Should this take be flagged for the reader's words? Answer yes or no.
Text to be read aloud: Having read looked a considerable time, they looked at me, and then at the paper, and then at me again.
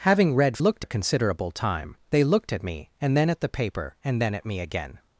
no